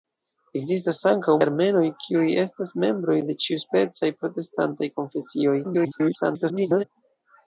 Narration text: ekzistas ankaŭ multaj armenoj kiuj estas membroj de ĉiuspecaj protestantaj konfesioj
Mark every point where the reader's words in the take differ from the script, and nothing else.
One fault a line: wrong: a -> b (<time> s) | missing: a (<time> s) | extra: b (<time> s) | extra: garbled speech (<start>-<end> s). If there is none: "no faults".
missing: multaj (1.4 s)
extra: garbled speech (5.6-6.8 s)